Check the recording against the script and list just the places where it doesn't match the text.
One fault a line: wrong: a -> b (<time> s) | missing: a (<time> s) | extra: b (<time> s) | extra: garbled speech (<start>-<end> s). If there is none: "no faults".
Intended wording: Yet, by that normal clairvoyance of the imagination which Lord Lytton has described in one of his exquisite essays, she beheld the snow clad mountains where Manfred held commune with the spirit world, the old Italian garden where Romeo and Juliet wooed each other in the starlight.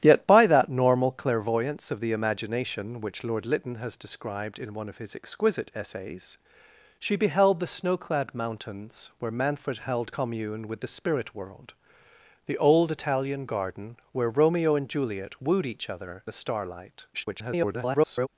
missing: in (16.2 s)
extra: garbled speech (17.1-18.3 s)